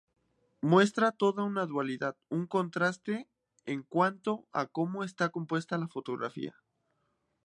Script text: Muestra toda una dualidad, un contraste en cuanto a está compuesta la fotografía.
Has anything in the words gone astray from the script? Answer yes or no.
yes